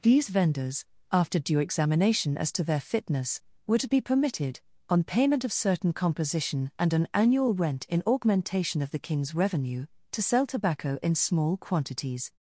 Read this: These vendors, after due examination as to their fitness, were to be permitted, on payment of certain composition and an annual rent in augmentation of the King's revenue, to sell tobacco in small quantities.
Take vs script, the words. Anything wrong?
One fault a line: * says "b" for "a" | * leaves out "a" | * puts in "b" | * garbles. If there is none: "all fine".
all fine